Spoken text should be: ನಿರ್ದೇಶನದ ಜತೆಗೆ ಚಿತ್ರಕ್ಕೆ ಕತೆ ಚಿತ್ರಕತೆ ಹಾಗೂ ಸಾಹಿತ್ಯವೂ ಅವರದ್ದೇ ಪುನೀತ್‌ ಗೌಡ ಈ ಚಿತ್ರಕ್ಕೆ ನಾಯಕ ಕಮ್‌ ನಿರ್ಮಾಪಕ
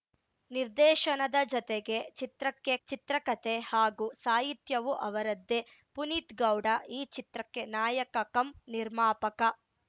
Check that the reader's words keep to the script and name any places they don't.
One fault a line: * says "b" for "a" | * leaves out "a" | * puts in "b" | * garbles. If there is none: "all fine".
* leaves out "ಕತೆ"